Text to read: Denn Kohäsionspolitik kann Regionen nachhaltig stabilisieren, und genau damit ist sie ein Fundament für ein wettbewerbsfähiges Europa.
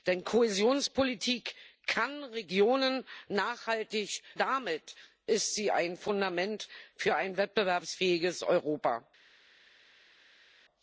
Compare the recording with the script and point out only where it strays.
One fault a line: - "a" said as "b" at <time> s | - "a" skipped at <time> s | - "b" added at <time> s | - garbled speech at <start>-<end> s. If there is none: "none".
- "stabilisieren und genau" skipped at 4.2 s